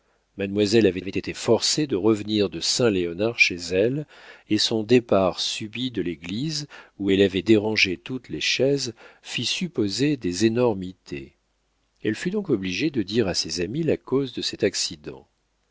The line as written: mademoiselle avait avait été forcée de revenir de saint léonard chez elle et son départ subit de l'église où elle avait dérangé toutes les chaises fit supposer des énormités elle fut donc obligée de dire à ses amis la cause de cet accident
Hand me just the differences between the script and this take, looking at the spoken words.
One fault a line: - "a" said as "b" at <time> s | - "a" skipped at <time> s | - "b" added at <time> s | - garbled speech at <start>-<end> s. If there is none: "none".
none